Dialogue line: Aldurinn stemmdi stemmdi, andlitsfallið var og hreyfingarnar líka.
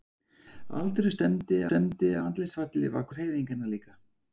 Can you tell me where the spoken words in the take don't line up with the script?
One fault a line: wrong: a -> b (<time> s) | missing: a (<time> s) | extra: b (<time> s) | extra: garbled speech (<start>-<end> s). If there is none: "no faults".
no faults